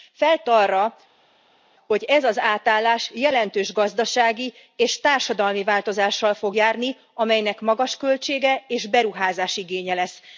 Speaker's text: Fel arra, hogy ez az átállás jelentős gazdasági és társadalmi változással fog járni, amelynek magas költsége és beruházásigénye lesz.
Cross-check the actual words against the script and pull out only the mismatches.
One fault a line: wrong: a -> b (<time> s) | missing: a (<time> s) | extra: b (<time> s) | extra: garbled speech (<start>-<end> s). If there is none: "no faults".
no faults